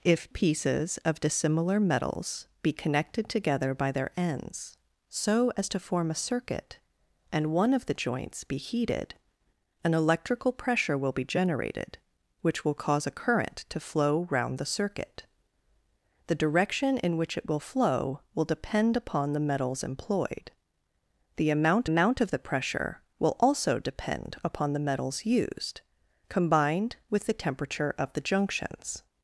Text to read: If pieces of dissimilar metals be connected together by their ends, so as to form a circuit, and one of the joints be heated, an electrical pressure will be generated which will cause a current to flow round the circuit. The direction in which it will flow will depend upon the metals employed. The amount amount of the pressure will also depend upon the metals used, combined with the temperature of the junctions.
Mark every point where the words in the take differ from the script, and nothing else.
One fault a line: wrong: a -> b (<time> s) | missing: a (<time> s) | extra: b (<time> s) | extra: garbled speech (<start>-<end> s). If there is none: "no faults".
no faults